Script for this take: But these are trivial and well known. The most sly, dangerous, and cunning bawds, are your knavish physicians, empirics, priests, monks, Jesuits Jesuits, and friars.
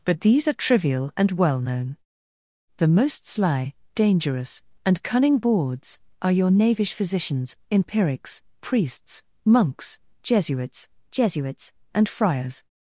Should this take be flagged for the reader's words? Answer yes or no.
no